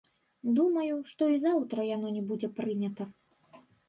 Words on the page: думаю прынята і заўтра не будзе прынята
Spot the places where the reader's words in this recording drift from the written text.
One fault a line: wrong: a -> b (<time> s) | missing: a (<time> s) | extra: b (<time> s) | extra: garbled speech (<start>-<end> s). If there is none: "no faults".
wrong: прынята -> што (1.1 s)
extra: яно (1.9 s)